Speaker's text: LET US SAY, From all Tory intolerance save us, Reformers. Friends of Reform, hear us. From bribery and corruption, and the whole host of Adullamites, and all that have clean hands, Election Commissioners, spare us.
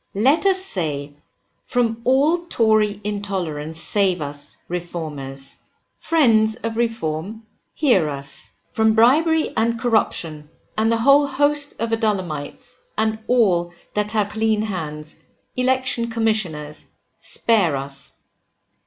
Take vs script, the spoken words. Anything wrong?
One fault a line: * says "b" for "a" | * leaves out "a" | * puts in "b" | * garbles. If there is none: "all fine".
all fine